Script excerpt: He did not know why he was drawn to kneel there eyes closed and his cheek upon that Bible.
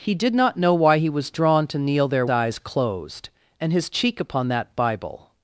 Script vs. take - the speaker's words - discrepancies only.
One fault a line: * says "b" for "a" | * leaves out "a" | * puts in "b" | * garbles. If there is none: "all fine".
all fine